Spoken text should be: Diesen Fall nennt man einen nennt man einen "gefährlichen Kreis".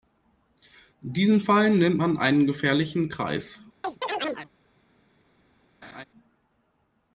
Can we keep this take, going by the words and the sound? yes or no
no